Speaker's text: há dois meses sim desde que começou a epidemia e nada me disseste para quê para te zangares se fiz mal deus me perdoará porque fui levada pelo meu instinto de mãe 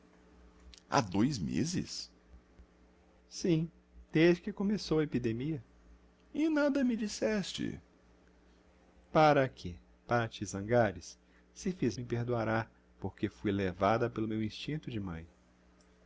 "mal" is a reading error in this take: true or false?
true